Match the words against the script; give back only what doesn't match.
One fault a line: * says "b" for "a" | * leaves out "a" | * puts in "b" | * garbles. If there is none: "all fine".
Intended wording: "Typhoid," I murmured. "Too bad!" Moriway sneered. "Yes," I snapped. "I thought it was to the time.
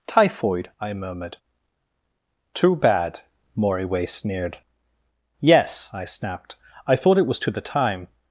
all fine